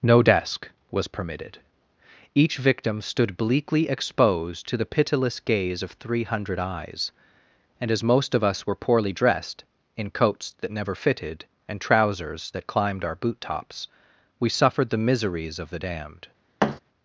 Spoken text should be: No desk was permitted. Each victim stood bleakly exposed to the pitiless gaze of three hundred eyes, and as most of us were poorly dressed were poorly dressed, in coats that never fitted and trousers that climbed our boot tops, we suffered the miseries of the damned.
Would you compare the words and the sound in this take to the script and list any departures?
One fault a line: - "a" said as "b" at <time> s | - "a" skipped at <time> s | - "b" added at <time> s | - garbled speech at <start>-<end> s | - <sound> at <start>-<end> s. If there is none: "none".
- "were poorly dressed" skipped at 9.6 s
- thud at 16.6-16.8 s